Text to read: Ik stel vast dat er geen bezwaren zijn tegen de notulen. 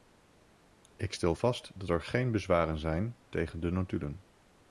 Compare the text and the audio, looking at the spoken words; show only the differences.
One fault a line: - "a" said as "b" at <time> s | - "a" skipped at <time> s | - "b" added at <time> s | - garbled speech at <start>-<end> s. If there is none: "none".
none